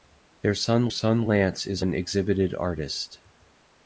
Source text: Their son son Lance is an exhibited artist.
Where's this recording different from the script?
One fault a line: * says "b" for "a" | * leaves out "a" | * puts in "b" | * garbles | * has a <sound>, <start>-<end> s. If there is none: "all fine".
all fine